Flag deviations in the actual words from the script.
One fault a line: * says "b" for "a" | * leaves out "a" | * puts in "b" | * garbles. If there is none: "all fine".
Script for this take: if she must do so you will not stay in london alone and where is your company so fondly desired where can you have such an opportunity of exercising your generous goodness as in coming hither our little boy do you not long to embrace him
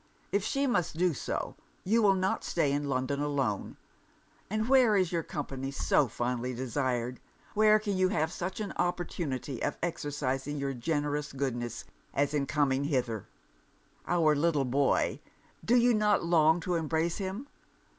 all fine